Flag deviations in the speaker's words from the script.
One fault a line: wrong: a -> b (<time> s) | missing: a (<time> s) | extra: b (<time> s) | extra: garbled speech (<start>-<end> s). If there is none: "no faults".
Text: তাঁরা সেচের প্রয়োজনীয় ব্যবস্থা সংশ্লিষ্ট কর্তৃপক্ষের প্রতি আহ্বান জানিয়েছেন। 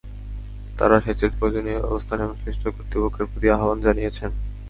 no faults